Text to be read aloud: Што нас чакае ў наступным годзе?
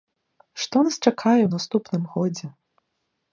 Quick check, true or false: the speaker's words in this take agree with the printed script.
true